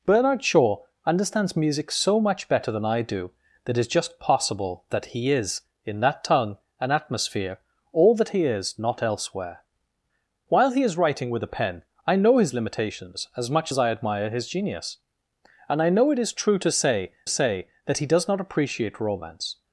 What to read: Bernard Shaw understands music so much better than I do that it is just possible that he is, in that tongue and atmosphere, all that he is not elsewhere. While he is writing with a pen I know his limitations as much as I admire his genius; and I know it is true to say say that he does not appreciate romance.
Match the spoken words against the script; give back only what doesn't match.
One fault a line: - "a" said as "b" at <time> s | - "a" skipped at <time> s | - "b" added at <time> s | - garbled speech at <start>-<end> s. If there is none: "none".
none